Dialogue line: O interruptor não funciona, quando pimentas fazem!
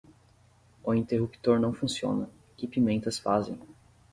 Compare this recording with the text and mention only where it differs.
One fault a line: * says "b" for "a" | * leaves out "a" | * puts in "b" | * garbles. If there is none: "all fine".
* says "que" for "quando"